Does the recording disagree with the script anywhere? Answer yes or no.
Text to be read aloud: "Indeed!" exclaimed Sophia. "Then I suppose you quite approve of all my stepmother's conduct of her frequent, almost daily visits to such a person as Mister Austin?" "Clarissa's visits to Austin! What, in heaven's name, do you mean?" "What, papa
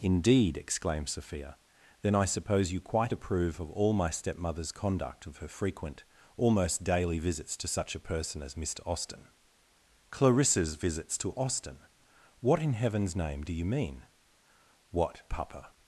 no